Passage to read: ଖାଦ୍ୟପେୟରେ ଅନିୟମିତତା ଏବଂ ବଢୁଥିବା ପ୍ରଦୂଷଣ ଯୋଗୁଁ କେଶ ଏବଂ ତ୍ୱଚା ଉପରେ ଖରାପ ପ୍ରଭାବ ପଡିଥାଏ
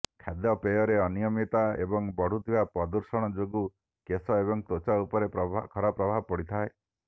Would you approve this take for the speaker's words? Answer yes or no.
yes